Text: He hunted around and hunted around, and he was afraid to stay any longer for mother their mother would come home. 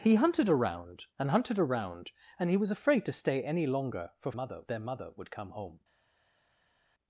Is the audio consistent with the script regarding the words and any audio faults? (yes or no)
yes